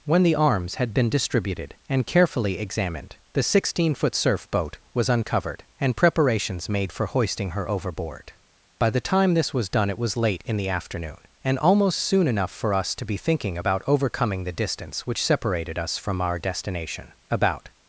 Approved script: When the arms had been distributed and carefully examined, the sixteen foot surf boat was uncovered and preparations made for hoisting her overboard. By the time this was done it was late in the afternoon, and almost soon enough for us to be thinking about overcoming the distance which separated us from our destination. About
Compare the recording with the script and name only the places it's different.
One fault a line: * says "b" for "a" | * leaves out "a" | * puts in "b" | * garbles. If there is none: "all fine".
all fine